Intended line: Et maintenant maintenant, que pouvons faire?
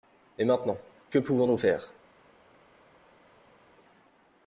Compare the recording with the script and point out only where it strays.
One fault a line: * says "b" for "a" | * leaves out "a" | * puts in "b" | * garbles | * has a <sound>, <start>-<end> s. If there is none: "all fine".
* leaves out "maintenant"
* puts in "nous"